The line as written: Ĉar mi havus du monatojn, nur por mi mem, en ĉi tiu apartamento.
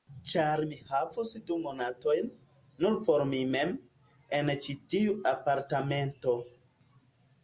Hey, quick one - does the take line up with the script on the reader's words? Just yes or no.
yes